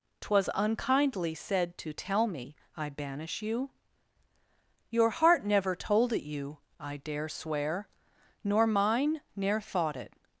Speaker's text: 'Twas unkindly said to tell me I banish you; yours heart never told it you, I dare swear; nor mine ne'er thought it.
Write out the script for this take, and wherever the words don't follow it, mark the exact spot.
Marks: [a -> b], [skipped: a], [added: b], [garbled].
'Twas unkindly said to tell me I banish you; [yours -> your] heart never told it you, I dare swear; nor mine ne'er thought it.